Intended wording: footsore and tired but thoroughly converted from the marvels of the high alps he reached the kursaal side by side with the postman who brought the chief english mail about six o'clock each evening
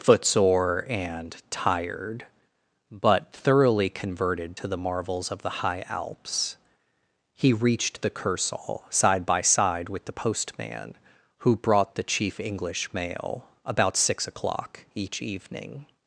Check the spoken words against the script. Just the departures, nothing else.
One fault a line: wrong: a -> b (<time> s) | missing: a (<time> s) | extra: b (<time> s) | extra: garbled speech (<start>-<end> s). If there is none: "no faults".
wrong: from -> to (4.5 s)